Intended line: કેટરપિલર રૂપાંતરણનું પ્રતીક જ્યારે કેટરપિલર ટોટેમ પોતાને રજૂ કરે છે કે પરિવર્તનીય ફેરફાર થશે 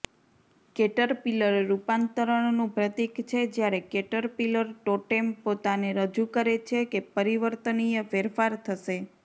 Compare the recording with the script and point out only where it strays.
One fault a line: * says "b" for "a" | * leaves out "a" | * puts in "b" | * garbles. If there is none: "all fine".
* puts in "છે"